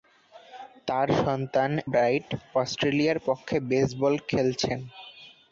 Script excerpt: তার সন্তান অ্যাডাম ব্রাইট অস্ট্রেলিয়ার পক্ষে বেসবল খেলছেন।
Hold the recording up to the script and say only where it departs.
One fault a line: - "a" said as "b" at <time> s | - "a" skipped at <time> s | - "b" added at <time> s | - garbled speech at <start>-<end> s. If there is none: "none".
- "অ্যাডাম" skipped at 1.7 s